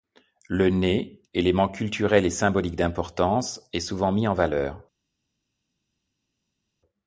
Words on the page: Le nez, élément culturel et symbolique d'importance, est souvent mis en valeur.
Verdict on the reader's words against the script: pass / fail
pass